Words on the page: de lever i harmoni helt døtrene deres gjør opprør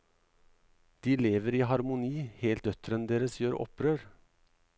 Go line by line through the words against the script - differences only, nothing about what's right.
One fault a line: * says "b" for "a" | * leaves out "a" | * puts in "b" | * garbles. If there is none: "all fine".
all fine